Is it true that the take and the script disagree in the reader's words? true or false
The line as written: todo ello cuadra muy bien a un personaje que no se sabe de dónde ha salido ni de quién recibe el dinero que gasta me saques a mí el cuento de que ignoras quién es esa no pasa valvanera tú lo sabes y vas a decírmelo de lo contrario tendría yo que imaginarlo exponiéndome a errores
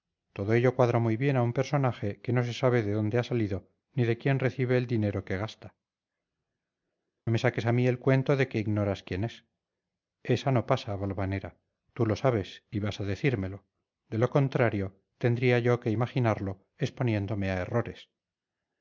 false